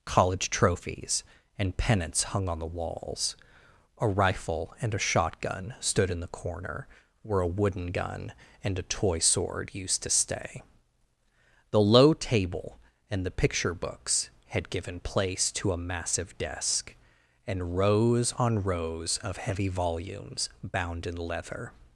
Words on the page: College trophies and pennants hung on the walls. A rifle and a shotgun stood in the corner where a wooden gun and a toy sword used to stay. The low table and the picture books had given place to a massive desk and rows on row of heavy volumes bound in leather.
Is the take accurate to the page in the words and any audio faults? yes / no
no